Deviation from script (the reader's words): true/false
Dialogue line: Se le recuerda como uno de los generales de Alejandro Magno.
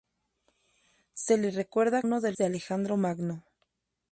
true